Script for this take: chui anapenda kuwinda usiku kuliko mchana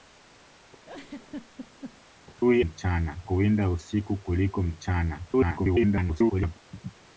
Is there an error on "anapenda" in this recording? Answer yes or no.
yes